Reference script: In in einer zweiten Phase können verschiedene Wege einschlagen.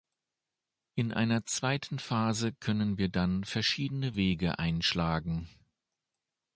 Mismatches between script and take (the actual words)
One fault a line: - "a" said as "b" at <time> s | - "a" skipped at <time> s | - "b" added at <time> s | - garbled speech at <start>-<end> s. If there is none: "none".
- "in" skipped at 1.1 s
- "wir dann" added at 3.0 s